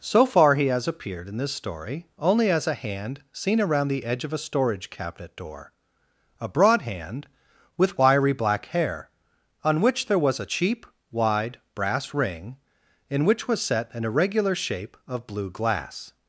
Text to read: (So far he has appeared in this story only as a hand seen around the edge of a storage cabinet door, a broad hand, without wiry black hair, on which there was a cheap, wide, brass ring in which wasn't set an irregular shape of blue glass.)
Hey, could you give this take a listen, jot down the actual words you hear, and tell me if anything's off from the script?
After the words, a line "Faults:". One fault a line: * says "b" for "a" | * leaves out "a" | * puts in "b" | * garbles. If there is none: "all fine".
(So far he has appeared in this story only as a hand seen around the edge of a storage cabinet door, a broad hand, with wiry black hair, on which there was a cheap, wide, brass ring in which was set an irregular shape of blue glass.)
Faults:
* says "with" for "without"
* says "was" for "wasn't"